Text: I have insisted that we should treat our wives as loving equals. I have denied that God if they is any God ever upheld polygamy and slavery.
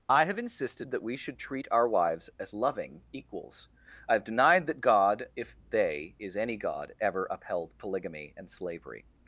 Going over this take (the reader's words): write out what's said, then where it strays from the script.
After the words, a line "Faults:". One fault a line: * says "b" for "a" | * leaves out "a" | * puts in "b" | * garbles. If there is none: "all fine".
I have insisted that we should treat our wives as loving equals. I have denied that God if they is any God ever upheld polygamy and slavery.
Faults:
all fine